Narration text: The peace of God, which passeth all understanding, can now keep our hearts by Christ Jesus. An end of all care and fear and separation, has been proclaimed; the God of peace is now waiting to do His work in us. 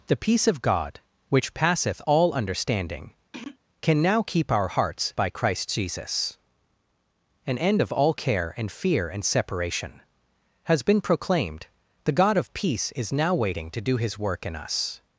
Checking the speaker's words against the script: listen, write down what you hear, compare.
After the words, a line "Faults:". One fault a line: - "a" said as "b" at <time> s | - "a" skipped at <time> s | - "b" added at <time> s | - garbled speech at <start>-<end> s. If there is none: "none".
The peace of God, which passeth all understanding, can now keep our hearts by Christ Jesus. An end of all care and fear and separation, has been proclaimed; the God of peace is now waiting to do His work in us.
Faults:
none